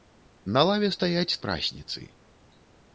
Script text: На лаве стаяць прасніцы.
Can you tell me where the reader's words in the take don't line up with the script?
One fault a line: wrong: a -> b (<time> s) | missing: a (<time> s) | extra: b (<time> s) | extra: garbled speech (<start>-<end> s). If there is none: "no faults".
no faults